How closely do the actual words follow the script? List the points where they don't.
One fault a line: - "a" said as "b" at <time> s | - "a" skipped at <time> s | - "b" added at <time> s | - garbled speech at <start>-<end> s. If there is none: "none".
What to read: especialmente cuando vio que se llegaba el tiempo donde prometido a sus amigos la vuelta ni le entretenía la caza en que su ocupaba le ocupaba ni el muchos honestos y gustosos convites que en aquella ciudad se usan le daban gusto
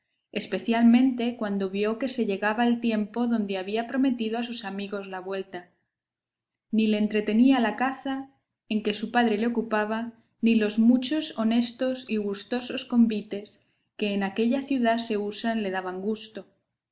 - "había" added at 3.6 s
- "ocupaba" said as "padre" at 9.1 s
- "el" said as "los" at 10.6 s